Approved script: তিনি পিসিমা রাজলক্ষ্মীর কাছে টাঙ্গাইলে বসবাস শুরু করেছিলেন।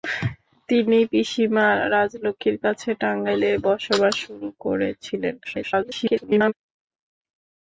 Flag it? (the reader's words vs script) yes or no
yes